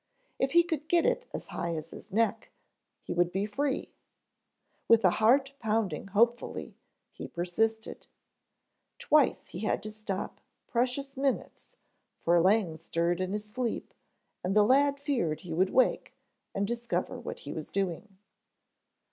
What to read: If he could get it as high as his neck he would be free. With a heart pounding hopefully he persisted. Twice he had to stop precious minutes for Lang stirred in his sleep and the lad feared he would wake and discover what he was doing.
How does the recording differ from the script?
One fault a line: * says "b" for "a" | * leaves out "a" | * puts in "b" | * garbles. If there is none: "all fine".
all fine